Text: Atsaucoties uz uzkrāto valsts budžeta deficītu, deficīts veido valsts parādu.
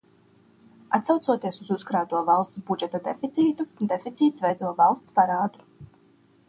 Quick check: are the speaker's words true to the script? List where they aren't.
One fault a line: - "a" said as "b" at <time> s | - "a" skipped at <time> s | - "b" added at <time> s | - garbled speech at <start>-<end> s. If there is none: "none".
none